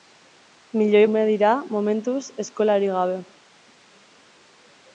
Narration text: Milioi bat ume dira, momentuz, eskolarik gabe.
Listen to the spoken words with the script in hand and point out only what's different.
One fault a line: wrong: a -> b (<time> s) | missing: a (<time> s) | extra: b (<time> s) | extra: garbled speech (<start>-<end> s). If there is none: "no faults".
missing: bat (1.0 s)